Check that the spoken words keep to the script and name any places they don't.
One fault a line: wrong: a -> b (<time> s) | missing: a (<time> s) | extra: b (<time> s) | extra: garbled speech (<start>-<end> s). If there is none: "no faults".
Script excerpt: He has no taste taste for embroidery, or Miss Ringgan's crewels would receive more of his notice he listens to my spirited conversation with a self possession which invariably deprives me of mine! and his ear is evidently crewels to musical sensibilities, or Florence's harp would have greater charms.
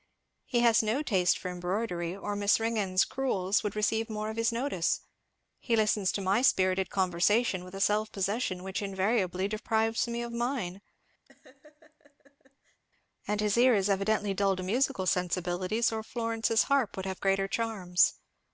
missing: taste (1.4 s)
wrong: crewels -> dull (14.3 s)